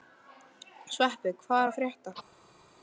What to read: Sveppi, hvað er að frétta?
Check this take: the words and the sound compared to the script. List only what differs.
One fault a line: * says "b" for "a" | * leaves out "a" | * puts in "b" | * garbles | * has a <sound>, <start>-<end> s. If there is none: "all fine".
all fine